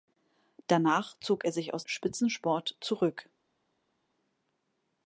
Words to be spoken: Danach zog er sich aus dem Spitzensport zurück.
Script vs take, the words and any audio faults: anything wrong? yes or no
yes